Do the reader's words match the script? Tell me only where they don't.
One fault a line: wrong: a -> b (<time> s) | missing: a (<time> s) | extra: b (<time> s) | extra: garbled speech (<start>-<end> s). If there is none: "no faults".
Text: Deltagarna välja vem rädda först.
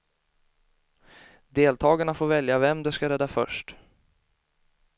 extra: får (2.1 s)
extra: de ska (2.8 s)